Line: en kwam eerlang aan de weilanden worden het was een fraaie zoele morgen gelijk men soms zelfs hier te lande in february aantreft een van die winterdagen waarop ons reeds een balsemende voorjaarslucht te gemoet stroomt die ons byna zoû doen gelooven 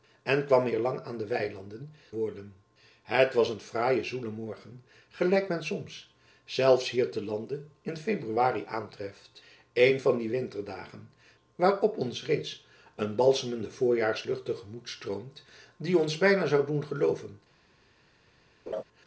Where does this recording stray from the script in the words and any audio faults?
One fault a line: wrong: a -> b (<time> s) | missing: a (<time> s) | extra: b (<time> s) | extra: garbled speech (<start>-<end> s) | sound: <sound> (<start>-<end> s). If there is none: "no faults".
sound: laugh (18.7-18.8 s)